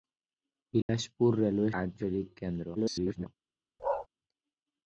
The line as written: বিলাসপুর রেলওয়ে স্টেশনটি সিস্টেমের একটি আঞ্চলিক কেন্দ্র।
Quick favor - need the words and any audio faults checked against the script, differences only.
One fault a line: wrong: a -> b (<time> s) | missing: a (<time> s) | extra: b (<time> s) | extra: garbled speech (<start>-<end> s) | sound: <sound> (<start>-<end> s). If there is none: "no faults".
sound: dropout (0.8-0.9 s)
missing: স্টেশনটি সিস্টেমের একটি (1.7 s)
extra: garbled speech (2.7-3.3 s)
sound: bark (3.8-4.1 s)